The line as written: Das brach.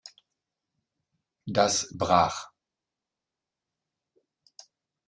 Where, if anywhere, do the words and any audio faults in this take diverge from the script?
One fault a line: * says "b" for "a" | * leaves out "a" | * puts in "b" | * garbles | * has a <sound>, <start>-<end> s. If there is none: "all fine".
all fine